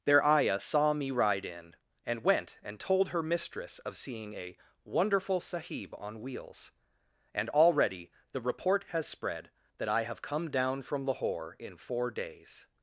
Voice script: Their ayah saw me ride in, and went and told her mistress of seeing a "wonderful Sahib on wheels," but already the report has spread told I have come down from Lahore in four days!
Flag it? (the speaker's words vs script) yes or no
yes